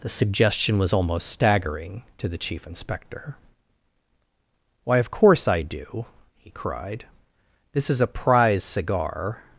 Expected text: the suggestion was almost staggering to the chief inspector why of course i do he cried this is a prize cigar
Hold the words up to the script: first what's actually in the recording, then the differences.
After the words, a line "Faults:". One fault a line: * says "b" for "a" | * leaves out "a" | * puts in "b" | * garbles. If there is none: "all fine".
the suggestion was almost staggering to the chief inspector why of course i do he cried this is a prize cigar
Faults:
all fine